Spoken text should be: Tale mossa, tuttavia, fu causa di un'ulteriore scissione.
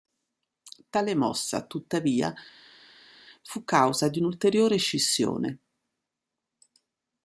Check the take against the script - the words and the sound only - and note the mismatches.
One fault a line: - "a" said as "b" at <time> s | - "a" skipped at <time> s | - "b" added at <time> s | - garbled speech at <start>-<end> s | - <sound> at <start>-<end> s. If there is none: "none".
none